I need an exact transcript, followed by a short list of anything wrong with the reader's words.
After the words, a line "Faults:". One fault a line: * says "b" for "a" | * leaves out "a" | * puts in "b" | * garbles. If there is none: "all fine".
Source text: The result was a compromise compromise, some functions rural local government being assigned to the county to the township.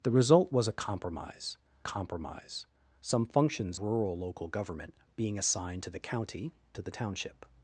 The result was a compromise compromise, some functions rural local government being assigned to the county to the township.
Faults:
all fine